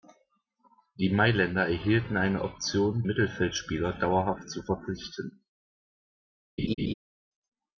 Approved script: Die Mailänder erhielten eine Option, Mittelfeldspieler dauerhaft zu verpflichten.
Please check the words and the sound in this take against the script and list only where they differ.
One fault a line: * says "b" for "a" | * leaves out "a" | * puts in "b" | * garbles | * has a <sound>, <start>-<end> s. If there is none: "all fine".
* has a laugh, 6.6-6.9 s